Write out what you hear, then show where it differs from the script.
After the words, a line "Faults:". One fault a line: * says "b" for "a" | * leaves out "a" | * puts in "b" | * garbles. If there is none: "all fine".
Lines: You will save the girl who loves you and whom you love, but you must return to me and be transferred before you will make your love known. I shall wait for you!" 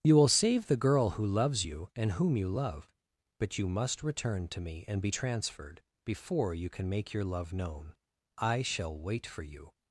You will save the girl who loves you and whom you love, but you must return to me and be transferred before you can make your love known. I shall wait for you!"
Faults:
* says "can" for "will"